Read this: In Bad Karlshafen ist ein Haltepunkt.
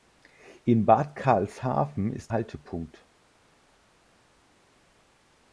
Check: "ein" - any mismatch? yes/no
yes